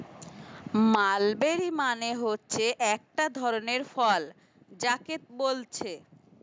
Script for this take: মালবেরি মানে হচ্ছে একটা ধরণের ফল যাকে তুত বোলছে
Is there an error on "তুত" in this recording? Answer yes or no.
yes